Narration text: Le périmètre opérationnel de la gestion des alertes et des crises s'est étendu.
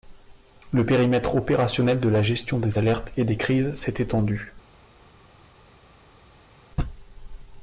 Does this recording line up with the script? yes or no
yes